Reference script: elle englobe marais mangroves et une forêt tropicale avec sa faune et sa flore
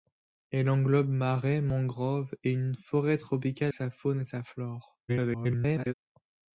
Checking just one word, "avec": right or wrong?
wrong